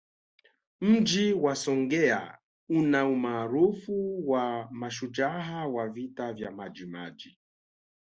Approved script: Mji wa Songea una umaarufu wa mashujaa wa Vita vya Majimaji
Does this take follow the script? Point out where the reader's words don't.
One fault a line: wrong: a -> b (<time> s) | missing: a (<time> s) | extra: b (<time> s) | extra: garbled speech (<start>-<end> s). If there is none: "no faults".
no faults